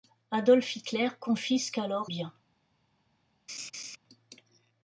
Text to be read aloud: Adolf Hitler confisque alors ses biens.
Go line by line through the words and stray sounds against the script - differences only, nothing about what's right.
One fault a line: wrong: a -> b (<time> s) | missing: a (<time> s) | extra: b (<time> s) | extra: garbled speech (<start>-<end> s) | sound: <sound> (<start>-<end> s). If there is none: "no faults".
missing: ses (2.1 s)
sound: laugh (3.5-4.0 s)